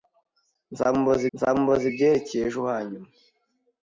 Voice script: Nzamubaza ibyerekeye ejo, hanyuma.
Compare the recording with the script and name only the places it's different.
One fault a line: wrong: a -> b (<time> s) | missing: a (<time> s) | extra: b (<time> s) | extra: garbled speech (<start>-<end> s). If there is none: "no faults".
extra: nzamubaza (1.3 s)